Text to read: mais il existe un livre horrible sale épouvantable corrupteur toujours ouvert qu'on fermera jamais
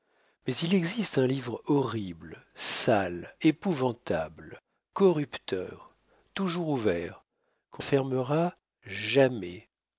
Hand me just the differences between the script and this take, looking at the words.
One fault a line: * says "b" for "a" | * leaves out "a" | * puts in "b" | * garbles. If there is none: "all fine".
all fine